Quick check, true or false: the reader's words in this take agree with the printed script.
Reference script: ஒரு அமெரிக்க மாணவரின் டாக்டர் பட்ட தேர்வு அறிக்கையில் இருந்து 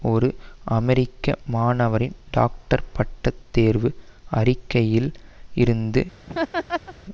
true